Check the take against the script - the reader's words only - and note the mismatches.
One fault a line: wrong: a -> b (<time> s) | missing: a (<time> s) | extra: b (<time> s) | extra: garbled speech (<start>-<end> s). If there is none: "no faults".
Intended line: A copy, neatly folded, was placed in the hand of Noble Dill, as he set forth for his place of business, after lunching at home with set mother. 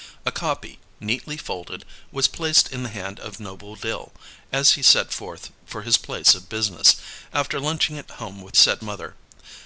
no faults